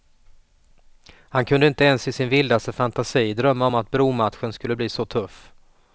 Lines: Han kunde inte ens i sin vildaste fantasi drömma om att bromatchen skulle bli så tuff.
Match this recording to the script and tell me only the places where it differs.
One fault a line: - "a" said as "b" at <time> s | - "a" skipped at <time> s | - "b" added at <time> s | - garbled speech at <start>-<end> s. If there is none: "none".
none